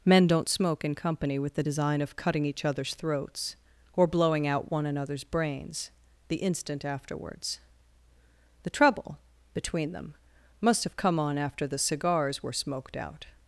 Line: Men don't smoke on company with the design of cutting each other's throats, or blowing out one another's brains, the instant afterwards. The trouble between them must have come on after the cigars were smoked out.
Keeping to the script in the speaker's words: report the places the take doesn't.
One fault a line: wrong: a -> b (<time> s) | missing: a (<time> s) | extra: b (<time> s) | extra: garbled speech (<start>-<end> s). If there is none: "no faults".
wrong: on -> in (0.8 s)